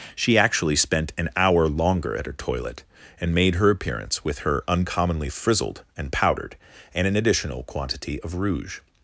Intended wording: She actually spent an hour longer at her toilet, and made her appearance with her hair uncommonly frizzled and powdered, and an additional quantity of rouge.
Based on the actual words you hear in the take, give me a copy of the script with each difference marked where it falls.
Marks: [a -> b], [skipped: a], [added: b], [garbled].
She actually spent an hour longer at her toilet, and made her appearance with her [skipped: hair] uncommonly frizzled and powdered, and an additional quantity of rouge.